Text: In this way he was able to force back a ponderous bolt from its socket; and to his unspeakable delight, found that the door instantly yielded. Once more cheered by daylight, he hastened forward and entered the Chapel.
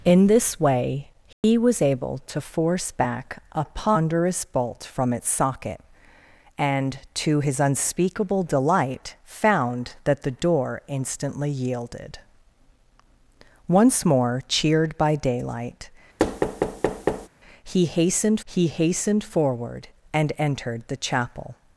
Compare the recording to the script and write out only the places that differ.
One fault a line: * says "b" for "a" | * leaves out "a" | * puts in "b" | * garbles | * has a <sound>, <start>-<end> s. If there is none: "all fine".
* has a dropout, 1.3-1.4 s
* has a thud, 16.2-17.3 s
* puts in "he hastened"